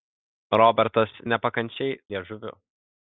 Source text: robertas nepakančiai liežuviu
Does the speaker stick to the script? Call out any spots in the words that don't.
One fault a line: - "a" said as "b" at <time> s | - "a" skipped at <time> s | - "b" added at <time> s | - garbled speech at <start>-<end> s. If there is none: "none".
none